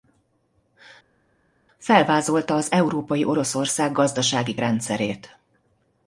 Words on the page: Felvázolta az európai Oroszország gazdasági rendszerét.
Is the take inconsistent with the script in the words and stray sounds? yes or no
no